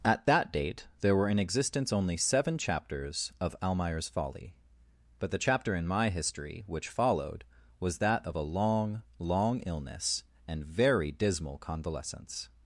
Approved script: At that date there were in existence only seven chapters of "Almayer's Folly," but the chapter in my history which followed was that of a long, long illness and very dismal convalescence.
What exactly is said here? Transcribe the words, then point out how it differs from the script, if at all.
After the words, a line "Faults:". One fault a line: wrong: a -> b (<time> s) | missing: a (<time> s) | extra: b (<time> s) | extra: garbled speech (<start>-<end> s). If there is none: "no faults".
At that date there were in existence only seven chapters of "Almayer's Folly," but the chapter in my history which followed was that of a long, long illness and very dismal convalescence.
Faults:
no faults